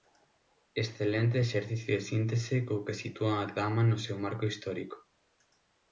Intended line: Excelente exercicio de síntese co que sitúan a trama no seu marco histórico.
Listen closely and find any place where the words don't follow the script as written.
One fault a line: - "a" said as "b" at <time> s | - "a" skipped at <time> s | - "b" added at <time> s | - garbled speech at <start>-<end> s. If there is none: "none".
none